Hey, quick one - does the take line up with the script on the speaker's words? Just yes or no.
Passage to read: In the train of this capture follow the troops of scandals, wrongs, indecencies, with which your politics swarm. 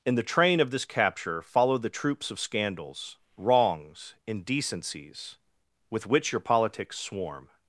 yes